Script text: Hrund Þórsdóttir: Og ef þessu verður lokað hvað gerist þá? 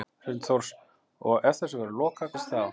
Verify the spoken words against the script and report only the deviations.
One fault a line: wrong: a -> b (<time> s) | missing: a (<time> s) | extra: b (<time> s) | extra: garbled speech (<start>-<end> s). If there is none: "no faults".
missing: hvað (2.4 s)